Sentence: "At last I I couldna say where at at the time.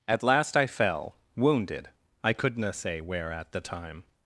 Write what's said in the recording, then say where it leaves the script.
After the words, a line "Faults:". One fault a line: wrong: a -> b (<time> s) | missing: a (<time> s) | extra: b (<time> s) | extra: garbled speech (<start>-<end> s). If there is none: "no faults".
"At last I fell, wounded, I couldna say where at the time.
Faults:
extra: fell wounded (0.7 s)
missing: at (3.5 s)